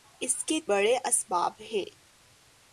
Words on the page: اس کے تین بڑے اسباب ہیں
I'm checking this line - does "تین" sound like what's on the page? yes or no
no